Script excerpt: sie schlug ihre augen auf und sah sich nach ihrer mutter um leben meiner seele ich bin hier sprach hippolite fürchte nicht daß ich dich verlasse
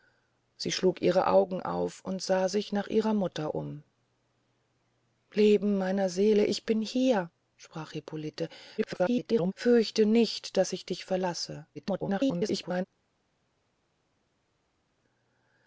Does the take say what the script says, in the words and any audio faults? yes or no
no